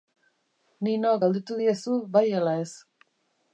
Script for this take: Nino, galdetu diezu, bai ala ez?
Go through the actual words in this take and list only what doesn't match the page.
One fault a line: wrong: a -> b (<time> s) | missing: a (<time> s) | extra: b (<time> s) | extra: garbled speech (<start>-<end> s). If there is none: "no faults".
no faults